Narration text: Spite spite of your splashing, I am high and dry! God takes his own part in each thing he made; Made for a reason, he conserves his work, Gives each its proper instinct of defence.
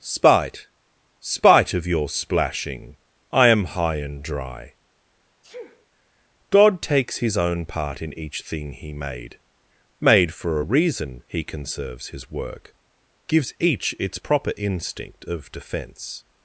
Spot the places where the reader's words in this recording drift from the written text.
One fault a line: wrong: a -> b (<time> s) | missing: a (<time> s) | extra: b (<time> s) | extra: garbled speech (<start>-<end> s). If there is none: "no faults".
no faults